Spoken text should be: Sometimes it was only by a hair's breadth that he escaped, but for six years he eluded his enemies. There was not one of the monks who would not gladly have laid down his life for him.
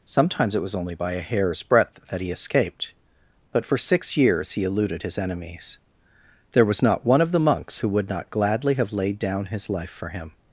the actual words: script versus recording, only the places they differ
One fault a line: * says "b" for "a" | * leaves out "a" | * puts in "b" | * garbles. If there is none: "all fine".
all fine